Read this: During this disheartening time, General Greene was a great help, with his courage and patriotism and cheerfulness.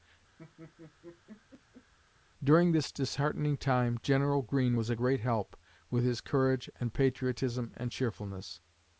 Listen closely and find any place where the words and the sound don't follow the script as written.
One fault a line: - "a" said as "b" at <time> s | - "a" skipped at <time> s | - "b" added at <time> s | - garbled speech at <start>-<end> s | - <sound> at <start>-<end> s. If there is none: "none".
- laugh at 0.4-1.9 s